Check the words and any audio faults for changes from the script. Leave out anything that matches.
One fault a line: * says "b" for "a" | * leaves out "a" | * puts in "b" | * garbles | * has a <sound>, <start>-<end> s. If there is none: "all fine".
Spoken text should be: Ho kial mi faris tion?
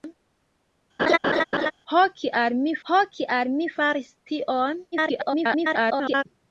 * has a laugh, 1.0-1.7 s
* puts in "ho kial mi"
* garbles